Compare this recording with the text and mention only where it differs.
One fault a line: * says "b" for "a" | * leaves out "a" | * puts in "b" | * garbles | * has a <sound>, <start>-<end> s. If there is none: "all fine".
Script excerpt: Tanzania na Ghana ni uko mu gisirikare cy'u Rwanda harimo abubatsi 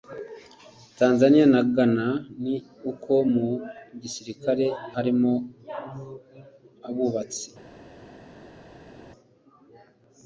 * leaves out "cy'u Rwanda"